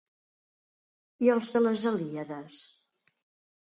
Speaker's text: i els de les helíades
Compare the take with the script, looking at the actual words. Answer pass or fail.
pass